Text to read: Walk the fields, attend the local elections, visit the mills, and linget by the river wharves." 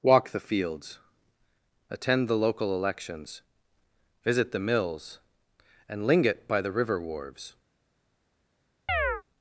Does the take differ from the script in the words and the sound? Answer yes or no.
yes